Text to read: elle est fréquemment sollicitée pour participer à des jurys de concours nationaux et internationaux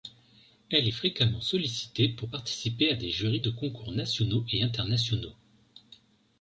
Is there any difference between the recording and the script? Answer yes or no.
no